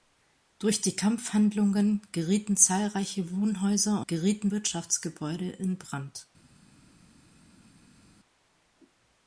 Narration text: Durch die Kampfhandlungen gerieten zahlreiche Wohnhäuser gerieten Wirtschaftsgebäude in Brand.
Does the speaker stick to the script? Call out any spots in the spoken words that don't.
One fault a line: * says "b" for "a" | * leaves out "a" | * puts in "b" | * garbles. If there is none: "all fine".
all fine